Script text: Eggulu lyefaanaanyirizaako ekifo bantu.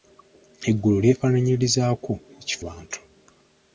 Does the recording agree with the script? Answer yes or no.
yes